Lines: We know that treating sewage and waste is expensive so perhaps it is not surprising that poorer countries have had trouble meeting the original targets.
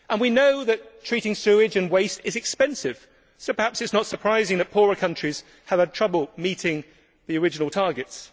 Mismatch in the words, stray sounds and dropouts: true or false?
false